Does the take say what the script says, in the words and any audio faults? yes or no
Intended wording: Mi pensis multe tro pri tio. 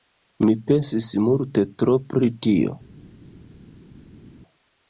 yes